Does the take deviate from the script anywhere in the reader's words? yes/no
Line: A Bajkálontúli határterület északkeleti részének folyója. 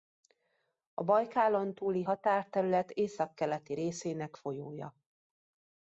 no